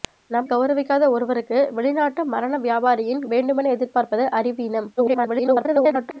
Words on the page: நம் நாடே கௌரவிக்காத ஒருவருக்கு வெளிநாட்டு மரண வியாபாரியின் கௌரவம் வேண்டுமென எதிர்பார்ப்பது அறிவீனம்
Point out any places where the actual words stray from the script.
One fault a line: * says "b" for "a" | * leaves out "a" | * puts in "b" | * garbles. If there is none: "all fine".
* leaves out "நாடே"
* leaves out "கௌரவம்"
* garbles